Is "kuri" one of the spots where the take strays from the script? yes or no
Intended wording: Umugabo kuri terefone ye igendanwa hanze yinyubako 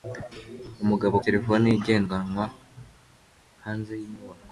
yes